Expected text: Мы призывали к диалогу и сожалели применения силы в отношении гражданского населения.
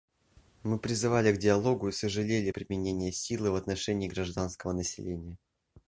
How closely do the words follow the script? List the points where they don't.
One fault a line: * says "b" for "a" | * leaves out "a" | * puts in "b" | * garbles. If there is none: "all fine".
all fine